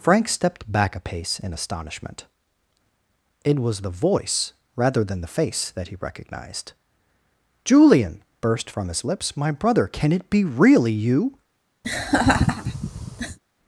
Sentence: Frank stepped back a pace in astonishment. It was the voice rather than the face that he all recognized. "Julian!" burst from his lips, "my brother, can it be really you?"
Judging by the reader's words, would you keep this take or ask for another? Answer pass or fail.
fail